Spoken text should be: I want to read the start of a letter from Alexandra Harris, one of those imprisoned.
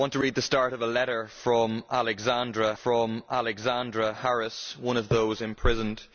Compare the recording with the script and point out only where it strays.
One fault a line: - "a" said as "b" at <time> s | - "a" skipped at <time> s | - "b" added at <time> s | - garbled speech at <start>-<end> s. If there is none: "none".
- "from Alexandra" added at 2.8 s